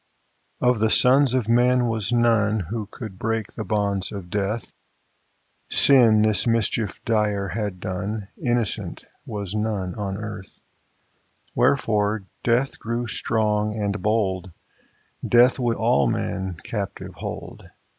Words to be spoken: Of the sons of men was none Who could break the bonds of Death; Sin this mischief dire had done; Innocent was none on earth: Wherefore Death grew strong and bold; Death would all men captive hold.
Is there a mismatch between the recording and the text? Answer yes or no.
no